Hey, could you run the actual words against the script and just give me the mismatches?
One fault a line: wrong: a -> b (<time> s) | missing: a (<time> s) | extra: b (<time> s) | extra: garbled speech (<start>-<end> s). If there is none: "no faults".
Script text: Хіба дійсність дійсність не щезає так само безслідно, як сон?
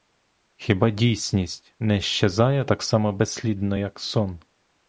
missing: дійсність (1.8 s)